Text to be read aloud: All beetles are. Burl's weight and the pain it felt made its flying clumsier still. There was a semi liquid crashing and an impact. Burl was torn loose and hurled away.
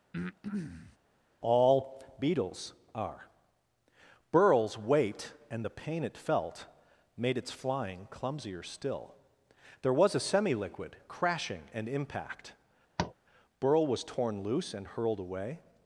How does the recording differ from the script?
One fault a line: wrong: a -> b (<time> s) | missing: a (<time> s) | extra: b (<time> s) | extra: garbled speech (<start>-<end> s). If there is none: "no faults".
missing: an (11.9 s)